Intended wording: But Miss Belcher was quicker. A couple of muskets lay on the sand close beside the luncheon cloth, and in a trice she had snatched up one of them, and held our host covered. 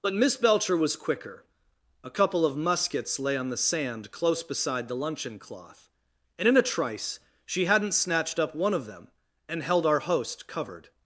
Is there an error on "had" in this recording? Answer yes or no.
yes